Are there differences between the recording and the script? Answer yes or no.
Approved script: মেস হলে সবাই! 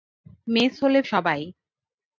no